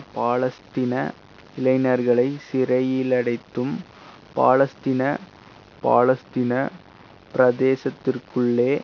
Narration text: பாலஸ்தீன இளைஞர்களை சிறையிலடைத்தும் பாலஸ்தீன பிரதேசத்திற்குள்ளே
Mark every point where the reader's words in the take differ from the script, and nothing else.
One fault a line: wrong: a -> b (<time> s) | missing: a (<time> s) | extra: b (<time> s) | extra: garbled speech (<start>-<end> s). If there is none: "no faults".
extra: பாலஸ்தீன (5.8 s)